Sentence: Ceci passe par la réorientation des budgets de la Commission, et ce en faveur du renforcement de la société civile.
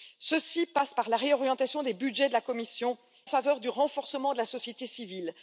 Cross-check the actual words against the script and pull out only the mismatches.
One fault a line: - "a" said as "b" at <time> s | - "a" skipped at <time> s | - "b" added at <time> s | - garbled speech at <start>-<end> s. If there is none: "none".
- "et ce en" skipped at 3.0 s